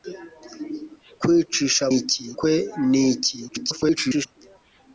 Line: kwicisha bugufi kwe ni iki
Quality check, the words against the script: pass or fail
fail